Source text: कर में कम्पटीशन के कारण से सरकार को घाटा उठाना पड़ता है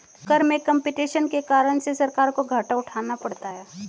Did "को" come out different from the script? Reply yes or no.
no